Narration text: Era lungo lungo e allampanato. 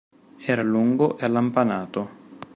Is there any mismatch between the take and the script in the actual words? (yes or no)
yes